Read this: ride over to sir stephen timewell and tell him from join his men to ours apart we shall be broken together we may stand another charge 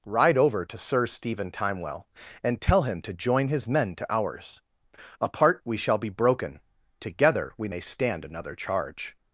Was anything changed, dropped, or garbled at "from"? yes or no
yes